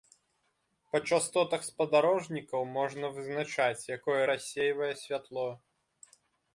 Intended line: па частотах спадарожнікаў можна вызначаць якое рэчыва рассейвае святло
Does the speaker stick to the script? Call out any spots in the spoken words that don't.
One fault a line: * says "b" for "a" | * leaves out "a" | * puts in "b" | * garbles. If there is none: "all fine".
* leaves out "рэчыва"